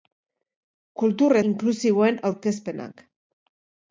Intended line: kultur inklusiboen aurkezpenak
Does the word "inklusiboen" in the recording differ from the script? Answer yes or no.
no